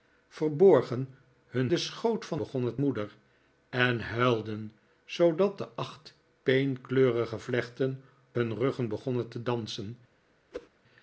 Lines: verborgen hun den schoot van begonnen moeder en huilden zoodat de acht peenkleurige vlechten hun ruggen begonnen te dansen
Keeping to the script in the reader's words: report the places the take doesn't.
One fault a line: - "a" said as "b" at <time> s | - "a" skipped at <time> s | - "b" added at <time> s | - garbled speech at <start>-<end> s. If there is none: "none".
none